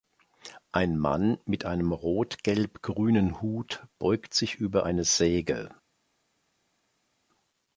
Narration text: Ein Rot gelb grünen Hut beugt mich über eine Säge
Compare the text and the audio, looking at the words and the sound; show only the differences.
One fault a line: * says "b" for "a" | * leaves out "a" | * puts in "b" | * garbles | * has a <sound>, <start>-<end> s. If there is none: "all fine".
* puts in "Mann mit einem"
* says "sich" for "mich"